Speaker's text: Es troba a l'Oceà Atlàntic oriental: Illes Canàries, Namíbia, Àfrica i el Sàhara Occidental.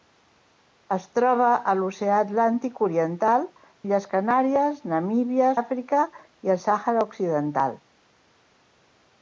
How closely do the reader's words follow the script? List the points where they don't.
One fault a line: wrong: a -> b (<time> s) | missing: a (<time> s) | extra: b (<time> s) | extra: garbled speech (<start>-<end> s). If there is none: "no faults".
no faults